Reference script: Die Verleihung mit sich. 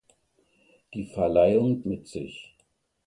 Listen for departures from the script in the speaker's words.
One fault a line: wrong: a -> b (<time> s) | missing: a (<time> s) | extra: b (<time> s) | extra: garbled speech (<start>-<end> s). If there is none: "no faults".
no faults